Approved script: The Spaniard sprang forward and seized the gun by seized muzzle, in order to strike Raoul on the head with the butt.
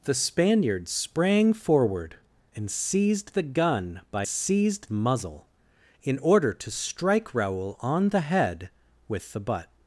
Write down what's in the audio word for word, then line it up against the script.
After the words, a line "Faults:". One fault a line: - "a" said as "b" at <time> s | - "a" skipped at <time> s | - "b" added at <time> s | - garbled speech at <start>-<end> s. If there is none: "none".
The Spaniard sprang forward and seized the gun by seized muzzle, in order to strike Raoul on the head with the butt.
Faults:
none